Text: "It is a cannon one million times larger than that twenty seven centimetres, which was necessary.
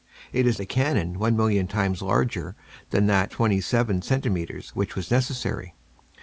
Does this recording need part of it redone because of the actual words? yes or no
no